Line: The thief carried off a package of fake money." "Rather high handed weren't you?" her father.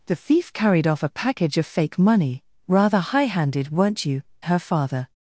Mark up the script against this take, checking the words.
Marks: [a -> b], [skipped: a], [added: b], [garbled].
The thief carried off a package of fake money." "Rather high handed weren't you?" her father.